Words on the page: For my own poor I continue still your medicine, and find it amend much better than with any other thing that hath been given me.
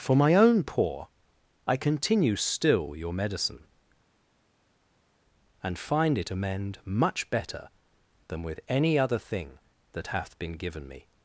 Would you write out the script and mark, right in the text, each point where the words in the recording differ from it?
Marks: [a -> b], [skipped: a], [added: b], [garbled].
For my own poor I continue still your medicine, and find it amend much better than with any other thing that hath been given me.